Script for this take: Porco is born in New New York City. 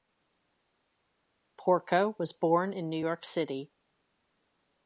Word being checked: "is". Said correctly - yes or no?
no